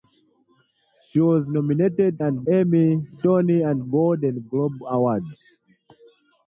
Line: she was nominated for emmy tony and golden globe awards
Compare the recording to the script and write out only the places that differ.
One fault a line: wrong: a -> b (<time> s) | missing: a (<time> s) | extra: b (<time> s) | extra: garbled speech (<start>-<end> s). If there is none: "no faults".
wrong: for -> and (2.2 s)